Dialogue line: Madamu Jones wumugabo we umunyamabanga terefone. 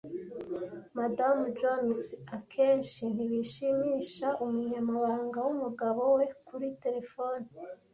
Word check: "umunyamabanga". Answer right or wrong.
wrong